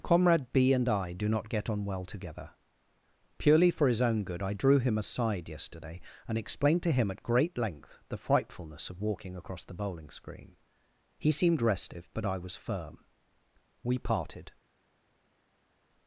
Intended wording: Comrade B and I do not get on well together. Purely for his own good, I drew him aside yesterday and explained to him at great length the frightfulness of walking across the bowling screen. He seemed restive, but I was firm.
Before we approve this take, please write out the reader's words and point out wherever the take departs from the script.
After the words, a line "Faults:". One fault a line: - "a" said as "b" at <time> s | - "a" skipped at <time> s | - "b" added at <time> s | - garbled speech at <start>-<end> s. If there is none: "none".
Comrade B and I do not get on well together. Purely for his own good, I drew him aside yesterday and explained to him at great length the frightfulness of walking across the bowling screen. He seemed restive, but I was firm. We parted
Faults:
- "We parted" added at 13.8 s